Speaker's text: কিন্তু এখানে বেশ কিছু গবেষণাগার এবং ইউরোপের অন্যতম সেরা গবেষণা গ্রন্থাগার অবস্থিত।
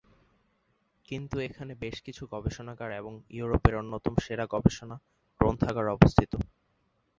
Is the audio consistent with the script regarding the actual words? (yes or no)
yes